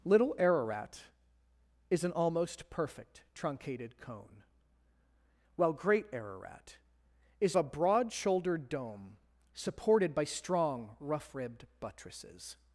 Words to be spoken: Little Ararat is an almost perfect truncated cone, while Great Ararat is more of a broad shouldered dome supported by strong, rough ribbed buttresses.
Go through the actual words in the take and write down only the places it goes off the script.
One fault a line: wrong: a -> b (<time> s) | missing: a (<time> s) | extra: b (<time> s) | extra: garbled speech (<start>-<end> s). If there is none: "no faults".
missing: more of (7.5 s)